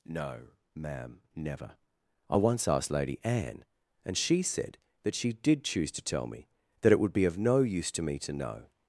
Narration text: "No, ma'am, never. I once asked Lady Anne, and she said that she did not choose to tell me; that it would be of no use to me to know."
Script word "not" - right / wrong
wrong